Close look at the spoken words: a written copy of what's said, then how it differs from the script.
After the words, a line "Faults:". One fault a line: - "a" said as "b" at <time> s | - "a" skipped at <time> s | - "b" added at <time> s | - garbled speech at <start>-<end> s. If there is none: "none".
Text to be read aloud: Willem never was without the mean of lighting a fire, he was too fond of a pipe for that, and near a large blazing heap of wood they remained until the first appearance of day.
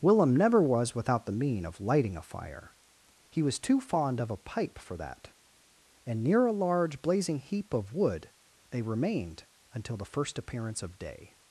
Willem never was without the mean of lighting a fire, he was too fond of a pipe for that, and near a large blazing heap of wood they remained until the first appearance of day.
Faults:
none